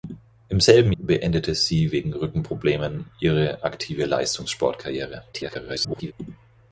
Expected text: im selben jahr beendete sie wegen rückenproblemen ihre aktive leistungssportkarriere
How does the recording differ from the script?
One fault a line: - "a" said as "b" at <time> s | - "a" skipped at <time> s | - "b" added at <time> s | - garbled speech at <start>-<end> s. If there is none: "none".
- "jahr" skipped at 0.9 s
- garbled speech at 5.3-6.1 s